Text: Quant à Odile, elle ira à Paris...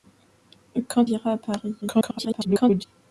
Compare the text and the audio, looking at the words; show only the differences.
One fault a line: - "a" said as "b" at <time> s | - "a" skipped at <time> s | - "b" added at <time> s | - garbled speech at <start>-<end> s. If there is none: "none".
- "à Odile elle" skipped at 1.1 s
- garbled speech at 1.8-2.8 s